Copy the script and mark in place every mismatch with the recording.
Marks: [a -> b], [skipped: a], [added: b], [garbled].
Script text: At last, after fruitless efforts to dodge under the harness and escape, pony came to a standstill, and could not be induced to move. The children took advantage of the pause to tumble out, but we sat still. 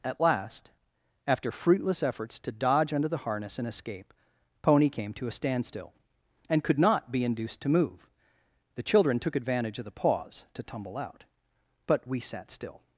At last, after fruitless efforts to dodge under the harness and escape, pony came to a standstill, and could not be induced to move. The children took advantage of the pause to tumble out, but we sat still.